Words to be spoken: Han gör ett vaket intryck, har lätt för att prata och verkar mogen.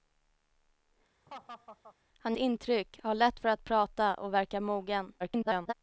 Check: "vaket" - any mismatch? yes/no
yes